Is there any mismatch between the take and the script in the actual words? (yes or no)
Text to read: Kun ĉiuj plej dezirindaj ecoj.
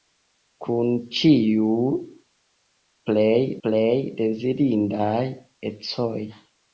yes